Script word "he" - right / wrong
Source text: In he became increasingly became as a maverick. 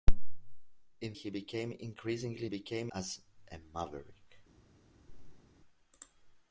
right